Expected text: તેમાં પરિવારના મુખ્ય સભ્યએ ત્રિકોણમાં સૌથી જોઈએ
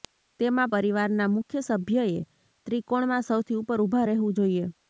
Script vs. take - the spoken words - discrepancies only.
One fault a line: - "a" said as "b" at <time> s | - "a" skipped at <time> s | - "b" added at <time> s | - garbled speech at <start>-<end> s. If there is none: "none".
- "ઉપર ઊભા રહેવું" added at 3.6 s